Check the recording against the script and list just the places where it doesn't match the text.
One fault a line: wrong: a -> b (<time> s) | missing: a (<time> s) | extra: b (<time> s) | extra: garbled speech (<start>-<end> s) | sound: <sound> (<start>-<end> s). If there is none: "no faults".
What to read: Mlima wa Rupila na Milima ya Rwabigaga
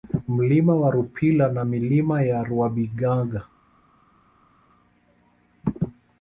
no faults